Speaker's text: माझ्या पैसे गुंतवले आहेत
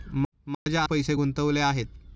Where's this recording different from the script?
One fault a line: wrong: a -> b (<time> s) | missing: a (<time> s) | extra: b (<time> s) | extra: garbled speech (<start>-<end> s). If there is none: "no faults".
no faults